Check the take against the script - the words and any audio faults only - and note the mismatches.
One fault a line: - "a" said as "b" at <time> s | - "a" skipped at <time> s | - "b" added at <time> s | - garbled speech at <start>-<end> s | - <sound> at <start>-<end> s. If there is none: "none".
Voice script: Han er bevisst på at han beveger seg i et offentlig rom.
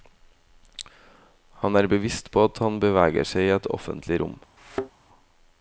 - thud at 4.6-4.9 s